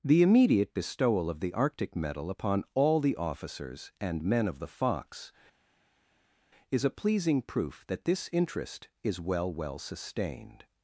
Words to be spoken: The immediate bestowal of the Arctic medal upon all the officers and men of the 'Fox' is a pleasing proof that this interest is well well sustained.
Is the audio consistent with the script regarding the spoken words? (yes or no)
yes